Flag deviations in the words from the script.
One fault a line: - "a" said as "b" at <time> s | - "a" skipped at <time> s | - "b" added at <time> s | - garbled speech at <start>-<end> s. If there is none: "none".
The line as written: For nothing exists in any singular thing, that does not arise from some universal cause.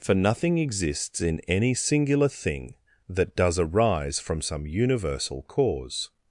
- "not" skipped at 3.6 s